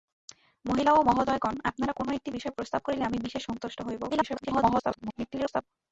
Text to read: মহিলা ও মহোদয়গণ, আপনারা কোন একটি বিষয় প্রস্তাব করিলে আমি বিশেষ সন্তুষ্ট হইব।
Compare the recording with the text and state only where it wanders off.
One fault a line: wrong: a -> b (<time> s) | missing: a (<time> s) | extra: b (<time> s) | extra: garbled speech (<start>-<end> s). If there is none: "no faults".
extra: garbled speech (4.1-5.6 s)